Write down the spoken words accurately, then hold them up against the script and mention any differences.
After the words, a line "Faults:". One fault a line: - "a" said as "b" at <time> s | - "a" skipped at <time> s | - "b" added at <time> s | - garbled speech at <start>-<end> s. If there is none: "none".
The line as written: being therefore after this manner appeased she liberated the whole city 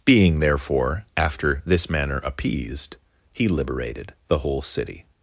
being therefore after this manner appeased he liberated the whole city
Faults:
- "she" said as "he" at 3.3 s